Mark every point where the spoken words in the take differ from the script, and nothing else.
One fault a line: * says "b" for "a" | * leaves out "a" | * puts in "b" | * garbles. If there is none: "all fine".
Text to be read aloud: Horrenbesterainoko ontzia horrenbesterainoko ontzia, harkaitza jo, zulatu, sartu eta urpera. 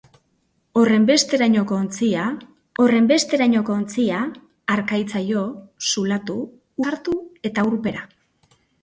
all fine